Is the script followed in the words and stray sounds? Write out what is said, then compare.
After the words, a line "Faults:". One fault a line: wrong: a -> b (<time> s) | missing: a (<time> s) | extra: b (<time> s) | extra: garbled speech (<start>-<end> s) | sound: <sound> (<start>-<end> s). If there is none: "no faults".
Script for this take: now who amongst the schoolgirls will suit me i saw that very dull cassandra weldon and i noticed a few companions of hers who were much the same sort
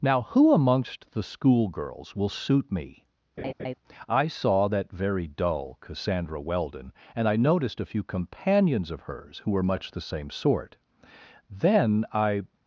now who amongst the schoolgirls will suit me i saw that very dull cassandra weldon and i noticed a few companions of hers who were much the same sort then i
Faults:
sound: laugh (3.4-3.7 s)
extra: then i (11.5 s)